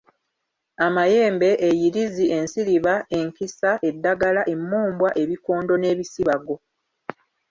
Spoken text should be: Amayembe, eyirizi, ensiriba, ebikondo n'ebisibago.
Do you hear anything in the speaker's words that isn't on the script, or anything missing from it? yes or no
yes